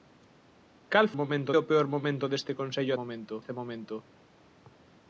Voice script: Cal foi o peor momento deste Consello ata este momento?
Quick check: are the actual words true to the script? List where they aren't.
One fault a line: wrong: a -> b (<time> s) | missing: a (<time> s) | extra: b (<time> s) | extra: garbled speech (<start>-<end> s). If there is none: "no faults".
wrong: foi -> momento (1.2 s)
wrong: ata -> momento (3.0 s)